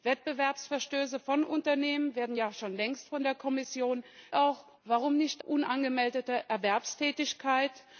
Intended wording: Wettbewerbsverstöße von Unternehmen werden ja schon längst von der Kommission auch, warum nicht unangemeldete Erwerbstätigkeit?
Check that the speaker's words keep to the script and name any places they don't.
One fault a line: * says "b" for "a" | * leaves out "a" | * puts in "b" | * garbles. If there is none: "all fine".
all fine